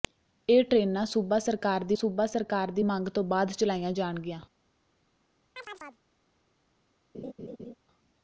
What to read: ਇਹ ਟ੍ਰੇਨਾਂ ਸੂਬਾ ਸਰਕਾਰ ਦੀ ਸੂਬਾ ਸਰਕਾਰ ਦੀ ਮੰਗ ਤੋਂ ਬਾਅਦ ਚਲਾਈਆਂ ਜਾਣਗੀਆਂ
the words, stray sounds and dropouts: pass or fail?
fail